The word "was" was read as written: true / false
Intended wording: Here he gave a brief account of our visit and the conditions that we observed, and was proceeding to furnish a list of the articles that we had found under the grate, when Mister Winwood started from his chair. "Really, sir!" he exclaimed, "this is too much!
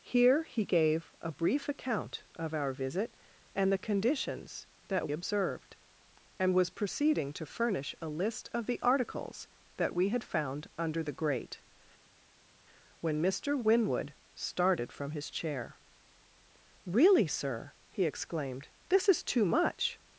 true